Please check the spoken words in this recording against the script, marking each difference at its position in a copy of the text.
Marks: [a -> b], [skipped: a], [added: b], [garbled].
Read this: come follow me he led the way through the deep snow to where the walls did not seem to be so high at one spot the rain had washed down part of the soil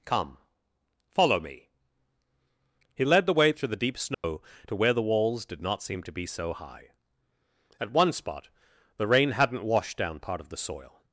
come follow me he led the way through the deep snow to where the walls did not seem to be so high at one spot the rain [had -> hadn't] washed down part of the soil